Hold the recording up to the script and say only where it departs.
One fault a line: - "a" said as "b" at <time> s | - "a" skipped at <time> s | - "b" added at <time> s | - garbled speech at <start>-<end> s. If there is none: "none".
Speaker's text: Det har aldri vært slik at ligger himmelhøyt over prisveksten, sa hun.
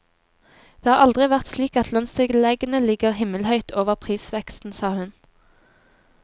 - "lønnstilleggene" added at 2.0 s